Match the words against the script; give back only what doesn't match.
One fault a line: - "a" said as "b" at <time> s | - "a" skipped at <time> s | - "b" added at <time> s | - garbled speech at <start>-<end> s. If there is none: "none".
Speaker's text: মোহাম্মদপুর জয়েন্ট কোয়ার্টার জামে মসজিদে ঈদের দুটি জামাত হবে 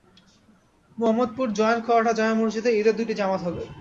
none